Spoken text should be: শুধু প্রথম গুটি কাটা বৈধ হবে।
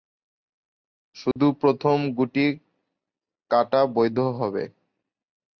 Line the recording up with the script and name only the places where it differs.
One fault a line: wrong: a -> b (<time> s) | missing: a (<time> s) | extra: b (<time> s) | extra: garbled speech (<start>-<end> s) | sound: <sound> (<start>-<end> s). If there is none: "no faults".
sound: dropout (1.3-1.4 s)